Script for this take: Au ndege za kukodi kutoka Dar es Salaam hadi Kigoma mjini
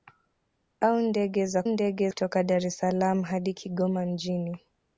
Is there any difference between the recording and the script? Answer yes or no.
yes